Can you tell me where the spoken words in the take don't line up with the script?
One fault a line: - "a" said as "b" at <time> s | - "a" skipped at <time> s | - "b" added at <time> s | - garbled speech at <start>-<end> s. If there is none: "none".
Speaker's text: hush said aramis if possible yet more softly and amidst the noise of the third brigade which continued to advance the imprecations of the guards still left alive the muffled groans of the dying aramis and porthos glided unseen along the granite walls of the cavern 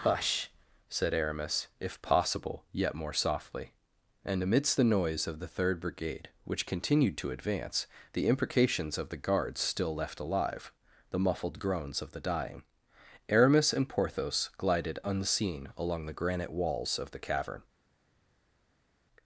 none